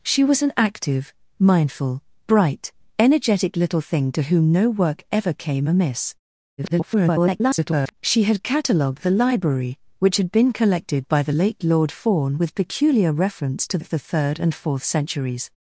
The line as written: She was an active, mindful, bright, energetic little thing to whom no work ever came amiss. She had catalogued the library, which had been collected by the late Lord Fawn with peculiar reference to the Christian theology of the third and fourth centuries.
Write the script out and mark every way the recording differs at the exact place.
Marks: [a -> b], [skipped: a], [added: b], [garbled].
She was an active, mindful, bright, energetic little thing to whom no work ever came amiss. [garbled] She had catalogued the library, which had been collected by the late Lord Fawn with peculiar reference to [skipped: the Christian theology] of the third and fourth centuries.